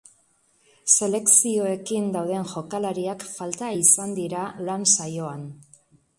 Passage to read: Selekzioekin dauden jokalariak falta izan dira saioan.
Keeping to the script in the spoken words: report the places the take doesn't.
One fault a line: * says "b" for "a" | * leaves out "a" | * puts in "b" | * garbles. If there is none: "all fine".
* puts in "lan"